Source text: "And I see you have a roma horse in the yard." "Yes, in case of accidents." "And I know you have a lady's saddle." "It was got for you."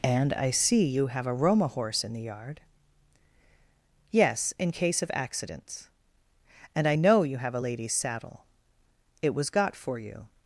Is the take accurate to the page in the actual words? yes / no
yes